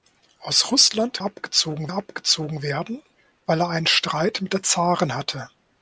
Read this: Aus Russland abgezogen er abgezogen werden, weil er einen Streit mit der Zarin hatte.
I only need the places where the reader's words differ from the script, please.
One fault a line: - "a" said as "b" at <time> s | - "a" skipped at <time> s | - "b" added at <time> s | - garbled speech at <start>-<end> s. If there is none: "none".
none